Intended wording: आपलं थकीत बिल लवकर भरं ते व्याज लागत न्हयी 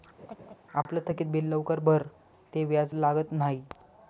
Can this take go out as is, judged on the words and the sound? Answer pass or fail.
fail